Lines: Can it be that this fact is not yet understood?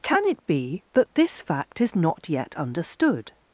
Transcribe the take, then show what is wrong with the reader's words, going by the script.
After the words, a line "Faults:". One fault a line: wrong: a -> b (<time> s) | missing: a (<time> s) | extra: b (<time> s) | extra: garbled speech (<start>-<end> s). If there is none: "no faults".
Can it be that this fact is not yet understood?
Faults:
no faults